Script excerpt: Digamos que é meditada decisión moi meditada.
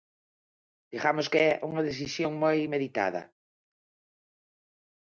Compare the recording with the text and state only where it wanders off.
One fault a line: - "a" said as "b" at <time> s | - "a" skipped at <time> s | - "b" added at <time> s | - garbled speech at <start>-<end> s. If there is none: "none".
- "meditada" said as "unha" at 1.7 s